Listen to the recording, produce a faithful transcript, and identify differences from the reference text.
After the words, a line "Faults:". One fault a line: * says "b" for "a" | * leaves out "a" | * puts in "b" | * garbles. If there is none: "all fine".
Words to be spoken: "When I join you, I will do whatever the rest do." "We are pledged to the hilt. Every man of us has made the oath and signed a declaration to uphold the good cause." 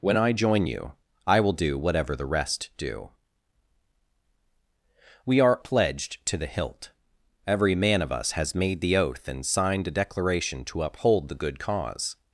"When I join you, I will do whatever the rest do." "We are pledged to the hilt. Every man of us has made the oath and signed a declaration to uphold the good cause."
Faults:
all fine